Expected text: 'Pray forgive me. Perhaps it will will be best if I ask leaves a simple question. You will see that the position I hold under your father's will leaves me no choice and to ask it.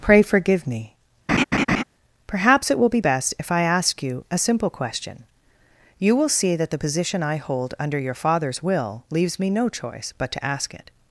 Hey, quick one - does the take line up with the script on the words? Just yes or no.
no